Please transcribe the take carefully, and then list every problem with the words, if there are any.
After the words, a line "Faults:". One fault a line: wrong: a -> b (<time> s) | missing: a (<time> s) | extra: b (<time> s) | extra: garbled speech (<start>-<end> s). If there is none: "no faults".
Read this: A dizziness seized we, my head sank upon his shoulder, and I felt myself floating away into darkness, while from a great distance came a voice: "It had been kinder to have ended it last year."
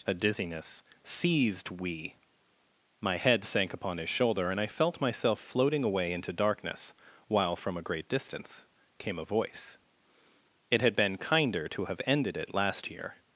A dizziness seized we, my head sank upon his shoulder, and I felt myself floating away into darkness, while from a great distance came a voice: "It had been kinder to have ended it last year."
Faults:
no faults